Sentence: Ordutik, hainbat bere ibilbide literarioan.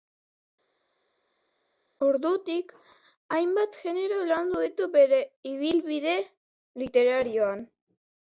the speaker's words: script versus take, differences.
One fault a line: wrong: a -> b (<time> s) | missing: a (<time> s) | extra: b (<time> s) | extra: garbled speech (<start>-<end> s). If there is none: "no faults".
extra: genero landu ditu (3.8 s)